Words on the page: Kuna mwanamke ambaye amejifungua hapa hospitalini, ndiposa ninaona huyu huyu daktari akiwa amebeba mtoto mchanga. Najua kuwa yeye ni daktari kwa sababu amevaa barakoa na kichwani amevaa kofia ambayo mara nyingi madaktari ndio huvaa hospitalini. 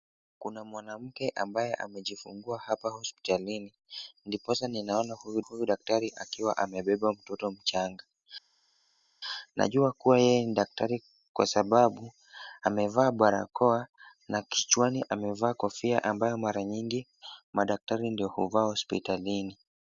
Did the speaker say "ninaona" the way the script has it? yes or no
yes